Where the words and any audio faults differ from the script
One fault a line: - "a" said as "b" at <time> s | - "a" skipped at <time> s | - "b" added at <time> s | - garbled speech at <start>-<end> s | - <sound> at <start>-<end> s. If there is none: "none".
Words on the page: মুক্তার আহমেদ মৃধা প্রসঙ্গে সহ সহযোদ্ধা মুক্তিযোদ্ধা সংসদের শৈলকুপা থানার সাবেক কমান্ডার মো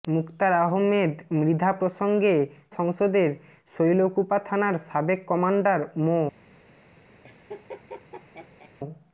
- "সহ সহযোদ্ধা মুক্তিযোদ্ধা" skipped at 2.4 s
- laugh at 7.2-8.7 s